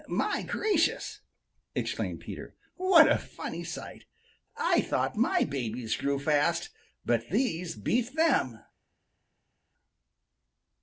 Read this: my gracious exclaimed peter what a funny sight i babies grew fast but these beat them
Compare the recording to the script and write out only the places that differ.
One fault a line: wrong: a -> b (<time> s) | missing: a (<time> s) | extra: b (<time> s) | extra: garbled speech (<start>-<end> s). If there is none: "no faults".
extra: thought my (4.8 s)